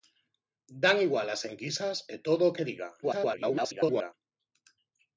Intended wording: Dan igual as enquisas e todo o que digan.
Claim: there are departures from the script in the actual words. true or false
true